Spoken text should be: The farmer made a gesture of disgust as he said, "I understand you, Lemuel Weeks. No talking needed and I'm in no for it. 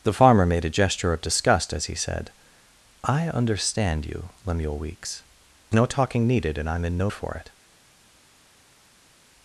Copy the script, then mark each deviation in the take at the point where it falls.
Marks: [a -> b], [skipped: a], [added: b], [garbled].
The farmer made a gesture of disgust as he said, "I understand you, Lemuel Weeks. No talking needed and I'm in no for it.